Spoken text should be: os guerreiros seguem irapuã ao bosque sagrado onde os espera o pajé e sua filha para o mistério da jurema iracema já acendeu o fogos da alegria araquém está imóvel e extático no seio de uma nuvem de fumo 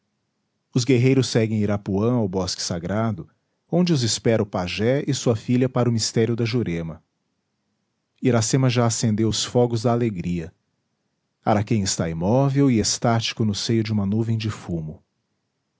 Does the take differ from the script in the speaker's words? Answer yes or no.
yes